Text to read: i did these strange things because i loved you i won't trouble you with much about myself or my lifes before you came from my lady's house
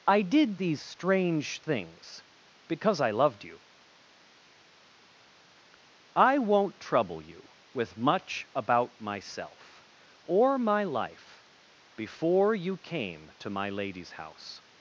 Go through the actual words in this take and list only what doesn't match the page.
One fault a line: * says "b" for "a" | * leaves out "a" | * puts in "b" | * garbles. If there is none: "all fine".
* says "life" for "lifes"
* says "to" for "from"